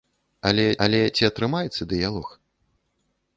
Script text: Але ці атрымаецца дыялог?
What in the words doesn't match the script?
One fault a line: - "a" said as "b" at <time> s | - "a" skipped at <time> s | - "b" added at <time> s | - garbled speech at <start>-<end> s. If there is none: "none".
- "але" added at 0.9 s